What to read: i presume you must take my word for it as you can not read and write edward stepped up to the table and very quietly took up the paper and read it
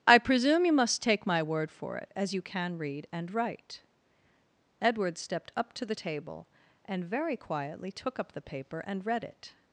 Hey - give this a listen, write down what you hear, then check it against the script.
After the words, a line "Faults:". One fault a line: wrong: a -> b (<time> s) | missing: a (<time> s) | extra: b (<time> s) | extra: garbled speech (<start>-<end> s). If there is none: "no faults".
i presume you must take my word for it as you can read and write edward stepped up to the table and very quietly took up the paper and read it
Faults:
missing: not (2.8 s)